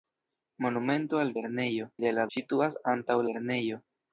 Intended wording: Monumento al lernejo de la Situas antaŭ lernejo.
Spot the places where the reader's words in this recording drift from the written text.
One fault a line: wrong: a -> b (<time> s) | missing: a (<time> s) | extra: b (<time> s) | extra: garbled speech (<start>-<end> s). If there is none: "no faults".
no faults